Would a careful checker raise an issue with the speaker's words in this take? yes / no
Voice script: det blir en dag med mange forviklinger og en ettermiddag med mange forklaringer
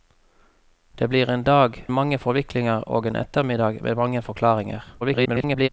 yes